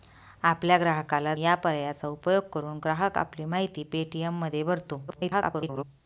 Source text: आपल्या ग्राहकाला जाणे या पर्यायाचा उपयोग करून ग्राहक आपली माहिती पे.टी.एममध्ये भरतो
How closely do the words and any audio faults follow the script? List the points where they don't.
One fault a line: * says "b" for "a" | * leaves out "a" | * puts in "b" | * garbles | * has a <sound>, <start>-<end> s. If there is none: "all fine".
* leaves out "जाणे"
* garbles